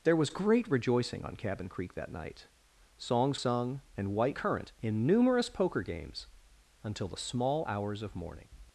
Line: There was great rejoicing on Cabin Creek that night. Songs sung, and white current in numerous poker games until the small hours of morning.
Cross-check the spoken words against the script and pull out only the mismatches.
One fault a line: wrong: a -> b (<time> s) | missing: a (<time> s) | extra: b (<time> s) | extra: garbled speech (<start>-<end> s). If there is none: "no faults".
no faults